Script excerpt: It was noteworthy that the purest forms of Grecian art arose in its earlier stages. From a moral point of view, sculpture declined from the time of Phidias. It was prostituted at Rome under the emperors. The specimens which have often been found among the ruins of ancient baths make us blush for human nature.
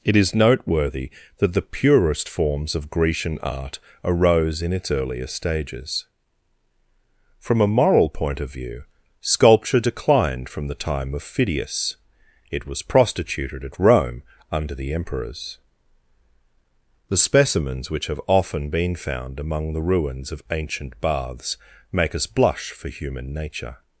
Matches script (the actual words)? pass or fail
fail